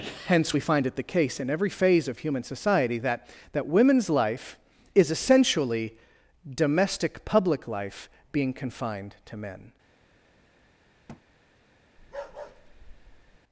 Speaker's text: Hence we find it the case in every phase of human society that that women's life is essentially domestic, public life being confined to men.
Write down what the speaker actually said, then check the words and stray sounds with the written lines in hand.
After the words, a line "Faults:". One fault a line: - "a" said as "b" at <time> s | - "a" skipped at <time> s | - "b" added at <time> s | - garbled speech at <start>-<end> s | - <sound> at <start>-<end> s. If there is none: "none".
Hence we find it the case in every phase of human society that that women's life is essentially domestic, public life being confined to men.
Faults:
- thud at 11.1-11.2 s
- bark at 12.0-13.4 s